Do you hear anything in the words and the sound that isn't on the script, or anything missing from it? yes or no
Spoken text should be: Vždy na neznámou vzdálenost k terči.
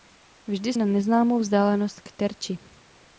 no